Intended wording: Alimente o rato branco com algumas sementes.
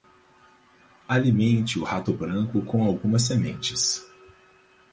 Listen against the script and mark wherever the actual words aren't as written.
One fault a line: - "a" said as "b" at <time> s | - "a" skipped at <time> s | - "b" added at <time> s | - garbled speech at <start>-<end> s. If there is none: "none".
none